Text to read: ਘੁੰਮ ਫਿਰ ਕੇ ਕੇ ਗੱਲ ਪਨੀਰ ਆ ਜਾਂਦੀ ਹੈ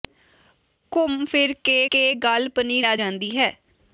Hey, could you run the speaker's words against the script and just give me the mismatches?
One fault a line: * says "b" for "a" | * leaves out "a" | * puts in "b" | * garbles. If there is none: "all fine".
all fine